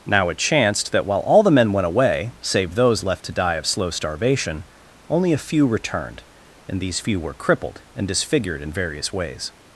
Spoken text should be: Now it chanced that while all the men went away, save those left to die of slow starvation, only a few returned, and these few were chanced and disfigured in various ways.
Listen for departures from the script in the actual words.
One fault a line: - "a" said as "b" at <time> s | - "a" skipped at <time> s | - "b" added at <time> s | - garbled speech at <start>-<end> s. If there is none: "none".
- "chanced" said as "crippled" at 7.3 s